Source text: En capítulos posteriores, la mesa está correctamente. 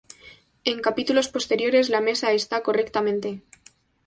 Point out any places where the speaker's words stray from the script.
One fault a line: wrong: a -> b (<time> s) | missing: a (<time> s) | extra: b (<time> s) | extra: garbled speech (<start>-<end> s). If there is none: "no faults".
no faults